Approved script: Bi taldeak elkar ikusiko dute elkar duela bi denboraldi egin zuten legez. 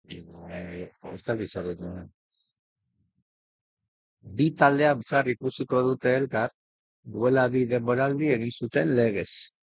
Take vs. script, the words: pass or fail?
pass